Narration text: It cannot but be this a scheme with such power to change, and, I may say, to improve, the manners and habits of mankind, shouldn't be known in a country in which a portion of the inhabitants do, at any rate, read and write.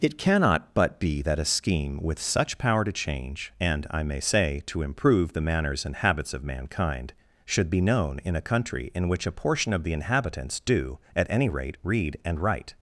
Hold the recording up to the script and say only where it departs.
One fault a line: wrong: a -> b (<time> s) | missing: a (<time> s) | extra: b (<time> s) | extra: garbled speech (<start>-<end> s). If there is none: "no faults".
wrong: this -> that (1.2 s)
wrong: shouldn't -> should (7.5 s)